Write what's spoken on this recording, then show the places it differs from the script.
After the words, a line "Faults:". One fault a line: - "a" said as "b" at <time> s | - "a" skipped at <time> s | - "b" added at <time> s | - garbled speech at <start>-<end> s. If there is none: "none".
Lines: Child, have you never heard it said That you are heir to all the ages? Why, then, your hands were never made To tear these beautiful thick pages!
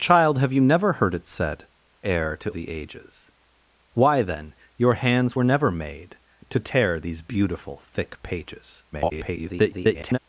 Child, have you never heard it said Heir to the ages? Why, then, your hands were never made To tear these beautiful thick pages! [garbled]
Faults:
- "That you are" skipped at 1.7 s
- "all" skipped at 2.5 s
- garbled speech at 8.9-10.2 s